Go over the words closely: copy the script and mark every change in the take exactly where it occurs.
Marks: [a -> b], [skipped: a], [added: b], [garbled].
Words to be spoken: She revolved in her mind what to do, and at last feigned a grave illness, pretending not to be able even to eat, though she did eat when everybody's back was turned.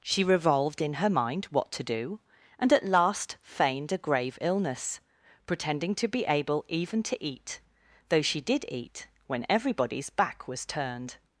She revolved in her mind what to do, and at last feigned a grave illness, pretending [skipped: not] to be able even to eat, though she did eat when everybody's back was turned.